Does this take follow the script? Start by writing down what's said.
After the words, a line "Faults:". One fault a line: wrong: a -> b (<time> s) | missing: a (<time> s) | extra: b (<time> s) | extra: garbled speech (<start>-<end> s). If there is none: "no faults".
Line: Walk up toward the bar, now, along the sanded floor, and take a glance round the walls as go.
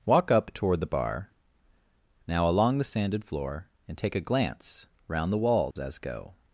Walk up toward the bar, now, along the sanded floor, and take a glance round the walls as go.
Faults:
no faults